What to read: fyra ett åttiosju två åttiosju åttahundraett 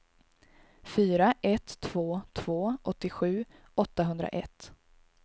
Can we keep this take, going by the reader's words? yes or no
no